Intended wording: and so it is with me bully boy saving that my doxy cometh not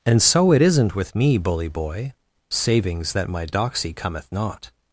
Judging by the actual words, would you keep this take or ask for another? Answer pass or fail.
fail